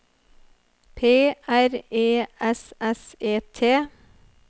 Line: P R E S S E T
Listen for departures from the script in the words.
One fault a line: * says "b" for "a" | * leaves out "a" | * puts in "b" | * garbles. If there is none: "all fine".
all fine